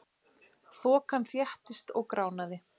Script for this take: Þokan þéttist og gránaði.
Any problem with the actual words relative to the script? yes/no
no